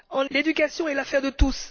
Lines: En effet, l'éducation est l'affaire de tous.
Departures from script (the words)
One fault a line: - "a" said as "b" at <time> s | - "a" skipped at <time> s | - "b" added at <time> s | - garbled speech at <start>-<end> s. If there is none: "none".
- "effet" skipped at 0.3 s